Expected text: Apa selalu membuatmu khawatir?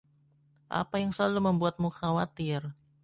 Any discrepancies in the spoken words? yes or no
yes